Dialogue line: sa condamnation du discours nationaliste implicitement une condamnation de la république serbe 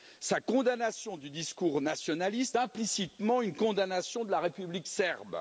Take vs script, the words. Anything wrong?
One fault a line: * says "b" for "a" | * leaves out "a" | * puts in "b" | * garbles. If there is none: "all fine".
all fine